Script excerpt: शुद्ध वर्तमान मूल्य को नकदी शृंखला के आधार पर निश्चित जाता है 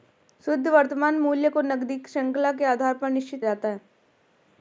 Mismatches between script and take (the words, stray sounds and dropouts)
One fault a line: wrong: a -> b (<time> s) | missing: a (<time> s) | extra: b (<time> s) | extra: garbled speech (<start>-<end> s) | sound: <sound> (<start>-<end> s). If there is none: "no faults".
no faults